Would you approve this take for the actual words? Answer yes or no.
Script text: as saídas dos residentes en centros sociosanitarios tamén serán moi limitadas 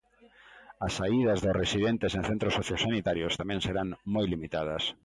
yes